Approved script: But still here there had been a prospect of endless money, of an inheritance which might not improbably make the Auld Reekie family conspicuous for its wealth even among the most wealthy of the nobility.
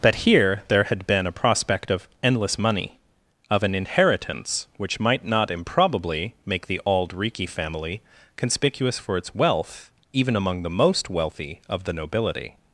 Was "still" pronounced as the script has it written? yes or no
no